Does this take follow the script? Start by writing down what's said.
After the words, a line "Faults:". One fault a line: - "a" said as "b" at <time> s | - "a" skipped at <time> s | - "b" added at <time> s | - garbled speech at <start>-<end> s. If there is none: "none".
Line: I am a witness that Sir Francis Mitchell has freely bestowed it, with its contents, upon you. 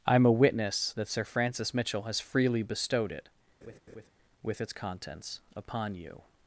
I am a witness that Sir Francis Mitchell has freely bestowed it, with its contents, upon you.
Faults:
none